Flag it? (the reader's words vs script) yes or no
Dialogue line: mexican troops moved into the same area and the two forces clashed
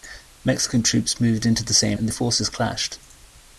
yes